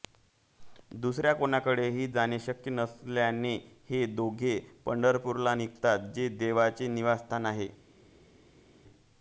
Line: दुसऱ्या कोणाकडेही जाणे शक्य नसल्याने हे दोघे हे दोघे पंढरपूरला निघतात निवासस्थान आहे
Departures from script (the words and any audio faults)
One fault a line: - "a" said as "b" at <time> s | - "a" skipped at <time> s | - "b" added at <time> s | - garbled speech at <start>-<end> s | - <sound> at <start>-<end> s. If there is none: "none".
- "हे दोघे पंढरपूरला निघतात" said as "पंढरपूरला निघतात जे देवाचे" at 4.9 s